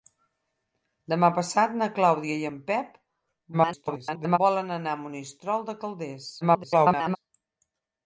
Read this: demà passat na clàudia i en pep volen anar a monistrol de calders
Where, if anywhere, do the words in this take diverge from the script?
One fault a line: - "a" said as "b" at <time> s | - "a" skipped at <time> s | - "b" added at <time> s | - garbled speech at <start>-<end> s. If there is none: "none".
- garbled speech at 3.5-4.4 s
- garbled speech at 6.4-7.2 s